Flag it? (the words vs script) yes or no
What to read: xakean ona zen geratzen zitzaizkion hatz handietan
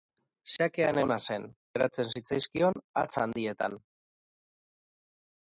no